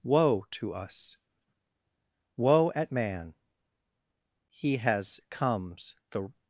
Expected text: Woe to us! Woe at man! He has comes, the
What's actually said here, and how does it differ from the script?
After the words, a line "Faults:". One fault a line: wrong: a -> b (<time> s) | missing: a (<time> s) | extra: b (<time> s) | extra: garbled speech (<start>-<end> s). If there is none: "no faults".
Woe to us! Woe at man! He has comes, the
Faults:
no faults